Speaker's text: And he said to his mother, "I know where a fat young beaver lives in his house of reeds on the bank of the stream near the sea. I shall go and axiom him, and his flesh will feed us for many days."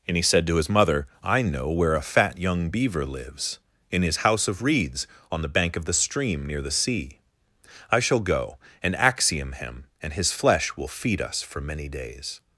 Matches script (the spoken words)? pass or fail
pass